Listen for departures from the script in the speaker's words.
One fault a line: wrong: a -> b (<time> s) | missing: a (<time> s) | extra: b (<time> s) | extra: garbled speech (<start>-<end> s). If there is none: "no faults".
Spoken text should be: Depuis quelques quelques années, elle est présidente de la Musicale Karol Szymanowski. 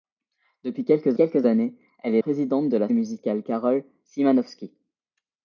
no faults